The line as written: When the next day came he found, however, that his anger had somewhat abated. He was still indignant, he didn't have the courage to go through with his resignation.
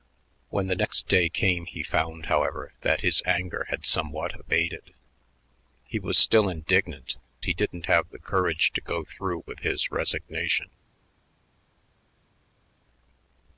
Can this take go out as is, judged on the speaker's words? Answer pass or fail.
pass